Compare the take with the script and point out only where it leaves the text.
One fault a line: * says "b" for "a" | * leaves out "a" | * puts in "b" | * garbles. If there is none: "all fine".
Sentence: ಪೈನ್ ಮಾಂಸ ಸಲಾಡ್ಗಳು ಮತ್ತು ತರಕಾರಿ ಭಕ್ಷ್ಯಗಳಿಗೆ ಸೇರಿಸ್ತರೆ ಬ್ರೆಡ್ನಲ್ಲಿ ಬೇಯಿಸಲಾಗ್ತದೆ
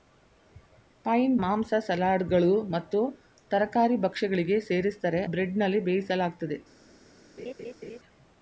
all fine